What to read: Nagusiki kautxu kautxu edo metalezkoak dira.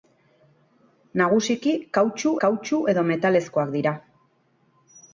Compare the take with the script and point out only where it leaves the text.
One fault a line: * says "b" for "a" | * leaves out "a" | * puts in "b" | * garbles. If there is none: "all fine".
all fine